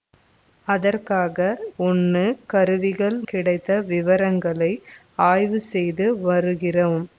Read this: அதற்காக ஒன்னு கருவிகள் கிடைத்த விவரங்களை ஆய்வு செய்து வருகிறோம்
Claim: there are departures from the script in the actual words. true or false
false